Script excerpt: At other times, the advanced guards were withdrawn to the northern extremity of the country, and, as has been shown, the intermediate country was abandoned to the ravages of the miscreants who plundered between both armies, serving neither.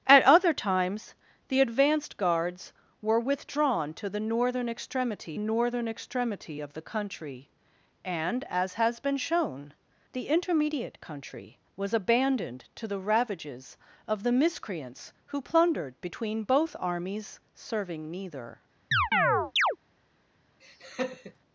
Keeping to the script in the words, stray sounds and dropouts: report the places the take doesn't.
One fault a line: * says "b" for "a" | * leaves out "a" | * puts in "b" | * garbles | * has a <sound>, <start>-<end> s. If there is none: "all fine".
* puts in "northern extremity"
* has a chirp, 18.9-19.8 s
* has a laugh, 20.6-21.4 s